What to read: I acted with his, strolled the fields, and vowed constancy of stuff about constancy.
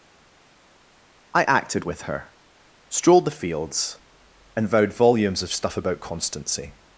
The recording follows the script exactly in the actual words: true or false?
false